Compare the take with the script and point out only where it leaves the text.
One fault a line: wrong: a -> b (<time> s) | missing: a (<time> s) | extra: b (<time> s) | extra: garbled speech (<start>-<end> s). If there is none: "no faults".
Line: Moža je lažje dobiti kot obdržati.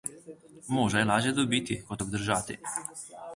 no faults